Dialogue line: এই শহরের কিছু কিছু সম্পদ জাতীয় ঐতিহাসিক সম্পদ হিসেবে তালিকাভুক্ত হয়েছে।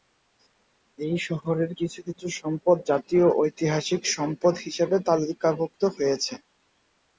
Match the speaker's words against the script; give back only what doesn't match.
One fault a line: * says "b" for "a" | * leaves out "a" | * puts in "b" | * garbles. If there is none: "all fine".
all fine